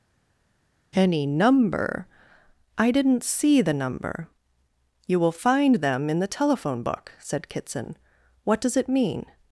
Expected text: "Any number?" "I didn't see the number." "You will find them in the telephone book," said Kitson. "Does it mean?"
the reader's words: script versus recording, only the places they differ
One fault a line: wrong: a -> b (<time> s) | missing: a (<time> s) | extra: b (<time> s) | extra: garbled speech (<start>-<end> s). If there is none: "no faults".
extra: What (8.4 s)